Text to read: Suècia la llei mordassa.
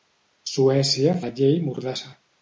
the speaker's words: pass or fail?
pass